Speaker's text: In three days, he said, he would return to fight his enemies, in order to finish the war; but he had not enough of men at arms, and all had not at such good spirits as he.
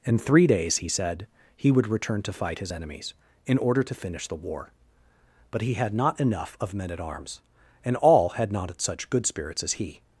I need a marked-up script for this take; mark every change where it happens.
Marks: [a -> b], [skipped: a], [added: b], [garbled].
In three days, he said, he would return to fight his enemies, in order to finish the war; but he had not enough of men at arms, and all had not at such good spirits as he.